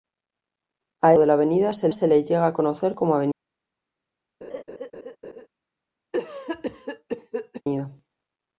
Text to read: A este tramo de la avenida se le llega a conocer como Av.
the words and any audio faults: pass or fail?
fail